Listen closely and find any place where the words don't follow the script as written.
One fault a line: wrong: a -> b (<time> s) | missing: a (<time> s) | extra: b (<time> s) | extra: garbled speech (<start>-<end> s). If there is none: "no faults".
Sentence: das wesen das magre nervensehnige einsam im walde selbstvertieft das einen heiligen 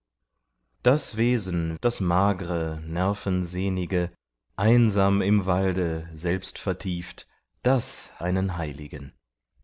no faults